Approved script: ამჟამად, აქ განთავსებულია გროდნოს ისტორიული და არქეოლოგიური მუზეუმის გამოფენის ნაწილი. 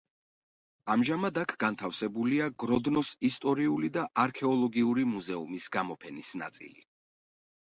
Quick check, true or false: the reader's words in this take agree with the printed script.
true